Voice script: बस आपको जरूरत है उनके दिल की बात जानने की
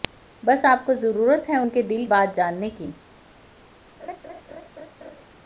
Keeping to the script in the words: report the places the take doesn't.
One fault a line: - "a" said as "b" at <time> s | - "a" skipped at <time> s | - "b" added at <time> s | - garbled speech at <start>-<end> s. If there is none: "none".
- "की" skipped at 2.1 s